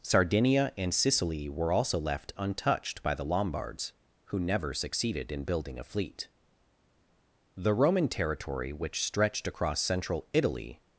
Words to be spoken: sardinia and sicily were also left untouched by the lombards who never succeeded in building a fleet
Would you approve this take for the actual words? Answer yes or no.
no